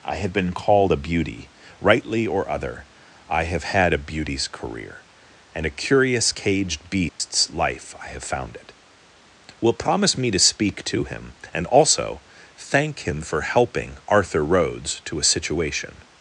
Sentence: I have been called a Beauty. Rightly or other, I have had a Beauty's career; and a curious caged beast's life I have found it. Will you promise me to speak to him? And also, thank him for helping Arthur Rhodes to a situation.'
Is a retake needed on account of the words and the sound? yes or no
yes